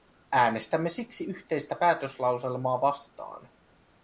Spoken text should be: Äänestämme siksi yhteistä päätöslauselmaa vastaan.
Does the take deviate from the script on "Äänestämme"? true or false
false